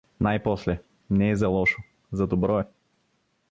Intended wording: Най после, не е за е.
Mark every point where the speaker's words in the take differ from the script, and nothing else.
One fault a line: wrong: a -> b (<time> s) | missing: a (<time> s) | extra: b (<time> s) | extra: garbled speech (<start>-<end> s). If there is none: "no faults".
extra: лошо за добро (1.5 s)